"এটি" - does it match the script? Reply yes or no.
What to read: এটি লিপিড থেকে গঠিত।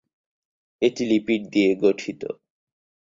yes